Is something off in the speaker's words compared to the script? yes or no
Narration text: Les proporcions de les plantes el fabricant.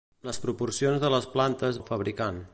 no